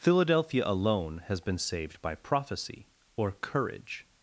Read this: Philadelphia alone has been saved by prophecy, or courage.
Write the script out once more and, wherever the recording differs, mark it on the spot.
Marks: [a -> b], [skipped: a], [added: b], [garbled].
Philadelphia alone has been saved by prophecy, or courage.